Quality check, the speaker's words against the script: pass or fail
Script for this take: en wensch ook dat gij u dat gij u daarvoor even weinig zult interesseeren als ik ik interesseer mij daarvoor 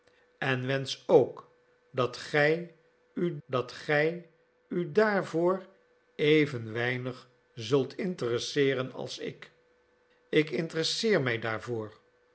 pass